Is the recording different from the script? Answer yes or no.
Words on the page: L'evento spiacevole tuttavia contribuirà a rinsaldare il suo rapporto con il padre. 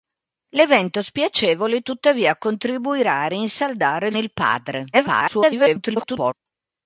yes